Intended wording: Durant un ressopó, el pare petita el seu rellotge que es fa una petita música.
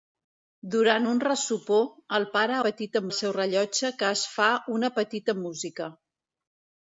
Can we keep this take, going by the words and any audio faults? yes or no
yes